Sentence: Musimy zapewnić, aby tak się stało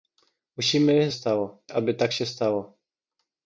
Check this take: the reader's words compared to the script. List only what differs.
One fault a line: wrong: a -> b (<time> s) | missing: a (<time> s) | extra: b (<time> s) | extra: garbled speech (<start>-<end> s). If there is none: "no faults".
wrong: zapewnić -> stało (1.1 s)